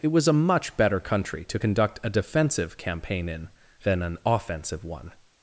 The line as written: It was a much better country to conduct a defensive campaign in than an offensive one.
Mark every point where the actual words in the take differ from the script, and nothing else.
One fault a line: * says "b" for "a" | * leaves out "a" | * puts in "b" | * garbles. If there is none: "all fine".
all fine